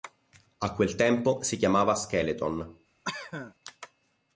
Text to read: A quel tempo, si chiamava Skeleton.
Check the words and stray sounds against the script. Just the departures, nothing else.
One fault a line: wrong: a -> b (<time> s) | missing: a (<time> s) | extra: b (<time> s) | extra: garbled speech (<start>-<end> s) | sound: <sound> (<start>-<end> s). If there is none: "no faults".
sound: cough (3.0-3.5 s)